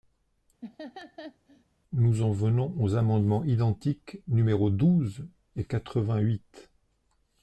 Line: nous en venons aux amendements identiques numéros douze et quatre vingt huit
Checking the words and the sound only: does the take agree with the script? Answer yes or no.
no